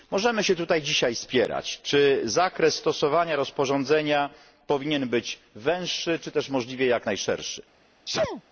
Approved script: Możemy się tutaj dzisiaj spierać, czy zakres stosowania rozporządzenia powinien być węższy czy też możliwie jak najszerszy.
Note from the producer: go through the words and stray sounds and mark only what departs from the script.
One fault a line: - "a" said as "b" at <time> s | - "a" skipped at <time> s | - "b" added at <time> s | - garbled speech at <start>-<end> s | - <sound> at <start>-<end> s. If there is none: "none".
- sneeze at 8.1-8.4 s